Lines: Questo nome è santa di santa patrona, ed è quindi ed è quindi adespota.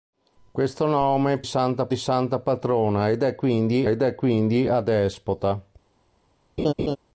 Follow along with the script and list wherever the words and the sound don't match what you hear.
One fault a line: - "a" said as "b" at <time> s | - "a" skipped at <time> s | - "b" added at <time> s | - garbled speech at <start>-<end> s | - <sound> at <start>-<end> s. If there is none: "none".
- laugh at 6.6-7.0 s